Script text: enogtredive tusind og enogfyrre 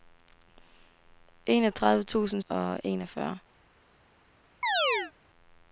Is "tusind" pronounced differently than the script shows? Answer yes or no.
no